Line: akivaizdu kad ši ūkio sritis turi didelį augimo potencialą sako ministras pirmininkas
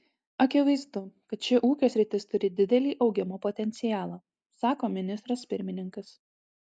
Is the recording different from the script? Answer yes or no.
no